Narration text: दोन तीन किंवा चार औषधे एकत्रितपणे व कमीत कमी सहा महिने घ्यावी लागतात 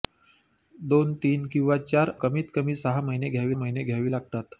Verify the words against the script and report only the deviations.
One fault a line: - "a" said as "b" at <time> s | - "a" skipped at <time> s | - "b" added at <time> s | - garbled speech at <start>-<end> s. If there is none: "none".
- "औषधे एकत्रितपणे व" skipped at 2.1 s
- "महिने घ्यावी" added at 3.6 s